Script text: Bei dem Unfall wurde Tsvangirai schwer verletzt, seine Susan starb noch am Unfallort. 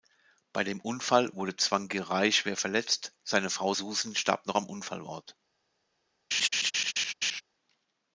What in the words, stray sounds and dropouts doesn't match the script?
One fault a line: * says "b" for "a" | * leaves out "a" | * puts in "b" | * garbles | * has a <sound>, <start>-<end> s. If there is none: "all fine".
* puts in "Frau"
* has a laugh, 6.3-7.4 s